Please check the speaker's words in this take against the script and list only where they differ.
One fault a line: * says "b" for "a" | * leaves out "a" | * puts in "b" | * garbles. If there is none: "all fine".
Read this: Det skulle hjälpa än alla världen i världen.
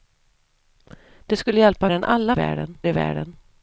all fine